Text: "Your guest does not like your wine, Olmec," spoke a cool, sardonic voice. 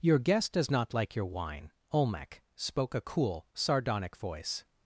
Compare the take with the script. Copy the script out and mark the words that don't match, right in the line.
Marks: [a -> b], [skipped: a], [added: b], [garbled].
"Your guest does not like your wine, Olmec," spoke a cool, sardonic voice.